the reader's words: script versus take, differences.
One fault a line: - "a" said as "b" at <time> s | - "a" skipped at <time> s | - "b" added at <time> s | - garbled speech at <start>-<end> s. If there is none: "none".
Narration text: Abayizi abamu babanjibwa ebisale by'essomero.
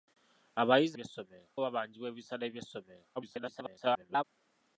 - "abamu" said as "by'essomero" at 0.9 s
- garbled speech at 3.2-4.2 s